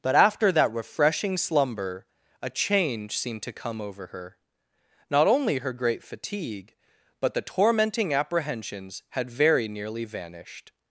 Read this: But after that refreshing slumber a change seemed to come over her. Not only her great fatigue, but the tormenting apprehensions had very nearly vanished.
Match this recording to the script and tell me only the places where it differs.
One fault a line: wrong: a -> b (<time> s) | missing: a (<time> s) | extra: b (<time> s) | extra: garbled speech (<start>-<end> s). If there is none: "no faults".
no faults